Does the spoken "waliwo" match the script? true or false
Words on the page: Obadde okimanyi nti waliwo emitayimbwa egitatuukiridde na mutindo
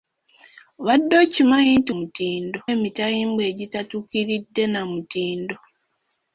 false